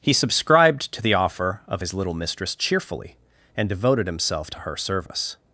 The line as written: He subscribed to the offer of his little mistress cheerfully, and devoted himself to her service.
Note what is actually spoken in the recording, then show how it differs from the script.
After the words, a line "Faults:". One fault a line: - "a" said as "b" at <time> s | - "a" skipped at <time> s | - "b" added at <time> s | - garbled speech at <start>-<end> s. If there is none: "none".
He subscribed to the offer of his little mistress cheerfully, and devoted himself to her service.
Faults:
none